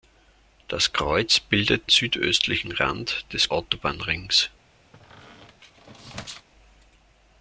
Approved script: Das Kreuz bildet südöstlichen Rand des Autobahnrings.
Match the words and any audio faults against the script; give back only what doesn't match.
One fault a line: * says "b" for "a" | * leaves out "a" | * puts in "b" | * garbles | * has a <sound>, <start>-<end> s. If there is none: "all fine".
* has a squeak, 4.9-6.5 s